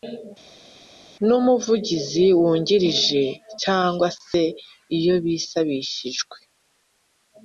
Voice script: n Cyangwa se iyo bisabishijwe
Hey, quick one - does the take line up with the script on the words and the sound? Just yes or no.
no